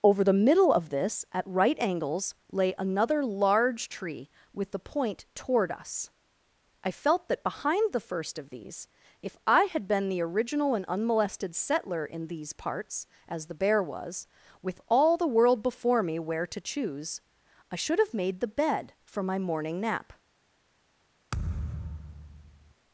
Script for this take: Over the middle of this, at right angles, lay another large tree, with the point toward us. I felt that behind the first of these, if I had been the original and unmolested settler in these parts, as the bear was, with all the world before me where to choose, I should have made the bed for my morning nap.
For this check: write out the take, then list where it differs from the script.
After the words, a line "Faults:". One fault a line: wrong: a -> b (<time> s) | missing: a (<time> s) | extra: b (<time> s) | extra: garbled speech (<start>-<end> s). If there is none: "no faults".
Over the middle of this, at right angles, lay another large tree, with the point toward us. I felt that behind the first of these, if I had been the original and unmolested settler in these parts, as the bear was, with all the world before me where to choose, I should have made the bed for my morning nap.
Faults:
no faults